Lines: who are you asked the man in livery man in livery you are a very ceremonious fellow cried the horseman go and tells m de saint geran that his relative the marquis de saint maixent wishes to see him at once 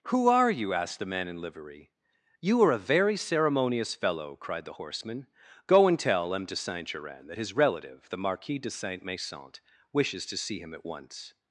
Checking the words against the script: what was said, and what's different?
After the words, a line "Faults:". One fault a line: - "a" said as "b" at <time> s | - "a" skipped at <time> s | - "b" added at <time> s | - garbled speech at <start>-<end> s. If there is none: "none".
who are you asked the man in livery you are a very ceremonious fellow cried the horseman go and tell m de saint geran that his relative the marquis de saint maixent wishes to see him at once
Faults:
- "man in livery" skipped at 1.9 s
- "tells" said as "tell" at 6.0 s